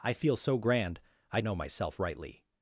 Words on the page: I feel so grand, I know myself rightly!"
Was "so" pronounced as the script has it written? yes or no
yes